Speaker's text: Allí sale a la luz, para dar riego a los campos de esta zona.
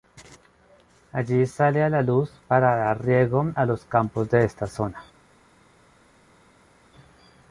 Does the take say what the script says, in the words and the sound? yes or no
yes